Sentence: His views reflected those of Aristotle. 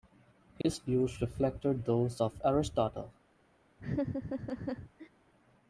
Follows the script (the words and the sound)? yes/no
no